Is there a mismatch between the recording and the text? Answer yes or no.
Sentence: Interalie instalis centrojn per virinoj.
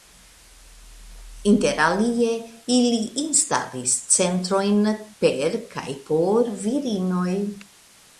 yes